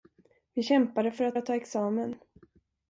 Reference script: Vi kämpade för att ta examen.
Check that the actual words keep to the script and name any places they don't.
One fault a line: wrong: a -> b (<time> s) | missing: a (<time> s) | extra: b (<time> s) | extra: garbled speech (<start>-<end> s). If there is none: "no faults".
extra: att (1.3 s)